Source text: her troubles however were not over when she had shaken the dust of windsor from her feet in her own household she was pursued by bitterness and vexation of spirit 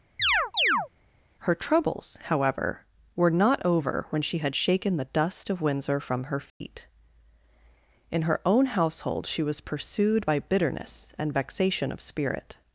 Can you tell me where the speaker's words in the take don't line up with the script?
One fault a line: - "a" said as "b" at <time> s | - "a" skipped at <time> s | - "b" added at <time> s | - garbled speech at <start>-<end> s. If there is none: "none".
none